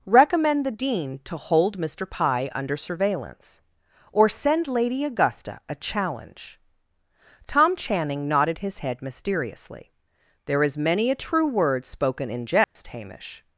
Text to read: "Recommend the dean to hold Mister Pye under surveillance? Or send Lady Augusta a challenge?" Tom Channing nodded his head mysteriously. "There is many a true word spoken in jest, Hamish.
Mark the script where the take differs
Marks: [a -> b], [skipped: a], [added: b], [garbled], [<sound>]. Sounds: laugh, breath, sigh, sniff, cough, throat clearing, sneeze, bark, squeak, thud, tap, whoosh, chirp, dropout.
"Recommend the dean to hold Mister Pye under surveillance? Or send Lady Augusta a challenge?" Tom Channing nodded his head mysteriously. "There is many a true word spoken in jest, [dropout] Hamish.